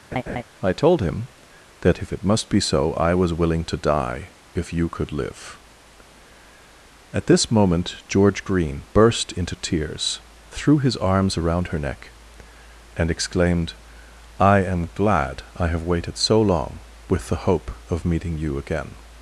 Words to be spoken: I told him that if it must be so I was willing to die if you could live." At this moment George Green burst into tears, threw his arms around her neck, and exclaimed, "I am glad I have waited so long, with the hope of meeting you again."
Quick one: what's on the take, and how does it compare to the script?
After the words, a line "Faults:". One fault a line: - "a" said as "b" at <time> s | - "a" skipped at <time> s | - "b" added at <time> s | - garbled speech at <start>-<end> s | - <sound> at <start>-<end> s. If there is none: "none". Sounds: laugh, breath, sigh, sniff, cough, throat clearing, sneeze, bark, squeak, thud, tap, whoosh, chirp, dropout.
I told him that if it must be so I was willing to die if you could live." At this moment George Green burst into tears, threw his arms around her neck, and exclaimed, "I am glad I have waited so long, with the hope of meeting you again."
Faults:
- laugh at 0.1-0.4 s